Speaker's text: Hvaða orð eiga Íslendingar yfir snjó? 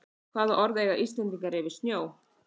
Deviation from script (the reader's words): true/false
false